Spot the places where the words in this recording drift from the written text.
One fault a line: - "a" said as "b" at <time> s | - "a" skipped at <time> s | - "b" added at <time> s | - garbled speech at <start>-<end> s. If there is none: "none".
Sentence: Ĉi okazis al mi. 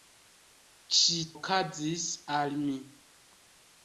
none